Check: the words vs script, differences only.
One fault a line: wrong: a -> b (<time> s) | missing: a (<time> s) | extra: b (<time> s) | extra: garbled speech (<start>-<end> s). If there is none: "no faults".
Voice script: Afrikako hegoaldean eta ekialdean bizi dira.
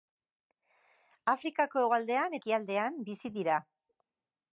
missing: eta (2.4 s)